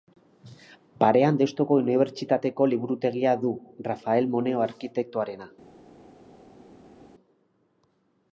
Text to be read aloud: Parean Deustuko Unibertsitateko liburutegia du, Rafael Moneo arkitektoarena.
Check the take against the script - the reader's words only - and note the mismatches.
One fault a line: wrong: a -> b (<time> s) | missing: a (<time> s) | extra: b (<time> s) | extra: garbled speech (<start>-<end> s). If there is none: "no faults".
no faults